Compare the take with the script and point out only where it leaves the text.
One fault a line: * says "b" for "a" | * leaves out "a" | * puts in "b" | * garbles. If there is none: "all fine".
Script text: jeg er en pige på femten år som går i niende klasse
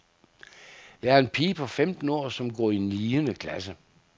all fine